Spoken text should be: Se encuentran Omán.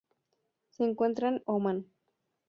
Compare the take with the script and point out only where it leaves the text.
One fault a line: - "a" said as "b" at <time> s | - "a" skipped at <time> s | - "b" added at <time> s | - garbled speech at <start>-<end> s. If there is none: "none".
none